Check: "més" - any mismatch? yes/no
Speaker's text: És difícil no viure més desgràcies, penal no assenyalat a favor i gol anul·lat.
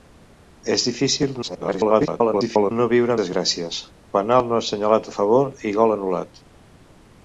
yes